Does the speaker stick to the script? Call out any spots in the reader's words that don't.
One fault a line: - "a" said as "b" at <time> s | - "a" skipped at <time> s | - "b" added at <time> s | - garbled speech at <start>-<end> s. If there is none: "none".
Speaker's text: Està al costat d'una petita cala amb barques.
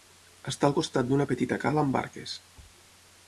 none